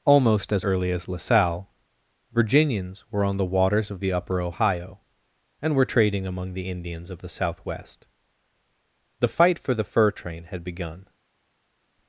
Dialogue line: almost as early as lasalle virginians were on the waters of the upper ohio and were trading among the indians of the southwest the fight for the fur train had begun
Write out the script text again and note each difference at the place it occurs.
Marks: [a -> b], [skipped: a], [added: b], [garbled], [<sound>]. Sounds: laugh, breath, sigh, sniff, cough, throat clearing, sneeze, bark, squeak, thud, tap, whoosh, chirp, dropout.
almost as early as lasalle virginians were on the waters of the upper ohio and were trading among the indians of the southwest the fight for the fur train had begun